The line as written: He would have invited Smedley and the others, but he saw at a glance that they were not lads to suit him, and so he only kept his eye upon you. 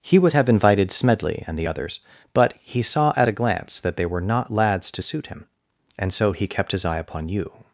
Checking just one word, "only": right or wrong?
wrong